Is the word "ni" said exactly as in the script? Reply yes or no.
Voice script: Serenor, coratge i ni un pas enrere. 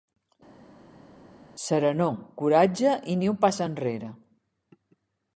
yes